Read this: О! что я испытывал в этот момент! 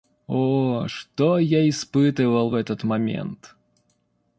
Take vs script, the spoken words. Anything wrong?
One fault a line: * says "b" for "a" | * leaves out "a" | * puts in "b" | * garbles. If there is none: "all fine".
all fine